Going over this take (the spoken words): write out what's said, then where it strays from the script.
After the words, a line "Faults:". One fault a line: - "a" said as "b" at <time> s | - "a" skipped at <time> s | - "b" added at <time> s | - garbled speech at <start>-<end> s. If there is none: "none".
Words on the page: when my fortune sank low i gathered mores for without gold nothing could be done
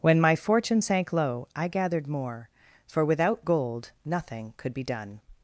when my fortune sank low i gathered more for without gold nothing could be done
Faults:
- "mores" said as "more" at 2.1 s